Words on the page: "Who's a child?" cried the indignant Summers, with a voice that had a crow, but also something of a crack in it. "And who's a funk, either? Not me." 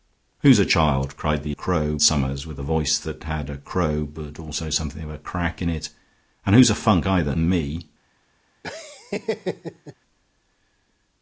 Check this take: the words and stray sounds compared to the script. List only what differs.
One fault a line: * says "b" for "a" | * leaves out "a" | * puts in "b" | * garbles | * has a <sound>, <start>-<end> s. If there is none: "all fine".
* says "crow" for "indignant"
* leaves out "Not"
* has a laugh, 8.6-9.9 s